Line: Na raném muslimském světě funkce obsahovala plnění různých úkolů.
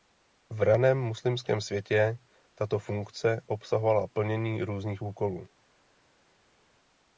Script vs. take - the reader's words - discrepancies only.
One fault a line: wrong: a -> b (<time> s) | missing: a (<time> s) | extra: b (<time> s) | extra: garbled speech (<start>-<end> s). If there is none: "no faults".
wrong: Na -> V (0.5 s)
extra: tato (2.5 s)